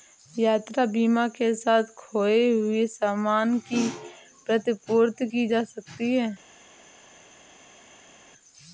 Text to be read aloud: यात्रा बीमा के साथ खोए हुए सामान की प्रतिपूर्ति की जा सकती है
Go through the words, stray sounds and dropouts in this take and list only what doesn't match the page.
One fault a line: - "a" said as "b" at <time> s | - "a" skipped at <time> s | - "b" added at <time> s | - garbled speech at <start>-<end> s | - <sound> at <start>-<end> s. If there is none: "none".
none